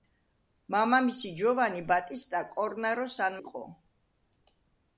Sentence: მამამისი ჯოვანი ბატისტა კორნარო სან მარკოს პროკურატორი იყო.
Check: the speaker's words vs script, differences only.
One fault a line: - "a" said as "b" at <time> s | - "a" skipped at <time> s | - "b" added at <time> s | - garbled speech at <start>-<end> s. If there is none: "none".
- "მარკოს პროკურატორი" skipped at 3.4 s